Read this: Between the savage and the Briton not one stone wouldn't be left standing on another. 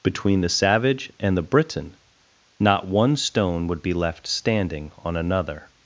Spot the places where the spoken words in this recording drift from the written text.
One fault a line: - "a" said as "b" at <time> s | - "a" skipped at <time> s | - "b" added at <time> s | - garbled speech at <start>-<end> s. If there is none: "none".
- "wouldn't" said as "would" at 3.6 s